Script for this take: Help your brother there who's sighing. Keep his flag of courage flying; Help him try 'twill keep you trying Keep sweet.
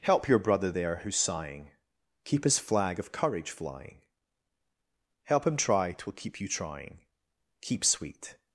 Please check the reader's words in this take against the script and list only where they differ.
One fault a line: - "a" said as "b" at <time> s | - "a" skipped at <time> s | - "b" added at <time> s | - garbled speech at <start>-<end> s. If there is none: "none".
none